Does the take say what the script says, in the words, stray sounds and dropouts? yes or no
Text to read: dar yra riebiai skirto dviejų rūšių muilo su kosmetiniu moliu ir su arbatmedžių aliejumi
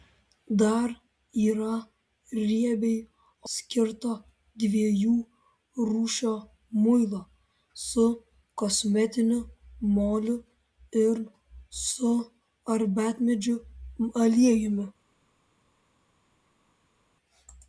yes